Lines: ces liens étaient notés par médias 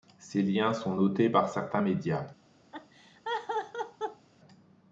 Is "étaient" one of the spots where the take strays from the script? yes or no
yes